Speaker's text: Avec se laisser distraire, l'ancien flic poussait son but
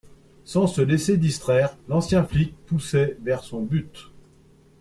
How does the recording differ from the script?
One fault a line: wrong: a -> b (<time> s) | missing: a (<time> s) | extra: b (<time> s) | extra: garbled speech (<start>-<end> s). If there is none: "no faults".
wrong: Avec -> Sans (0.5 s)
extra: vers (3.2 s)